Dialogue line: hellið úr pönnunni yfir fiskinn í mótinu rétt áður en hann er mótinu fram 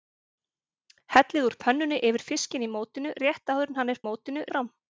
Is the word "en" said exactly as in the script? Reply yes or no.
yes